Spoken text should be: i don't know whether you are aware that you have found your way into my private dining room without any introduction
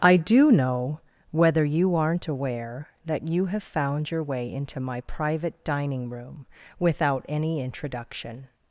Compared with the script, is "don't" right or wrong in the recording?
wrong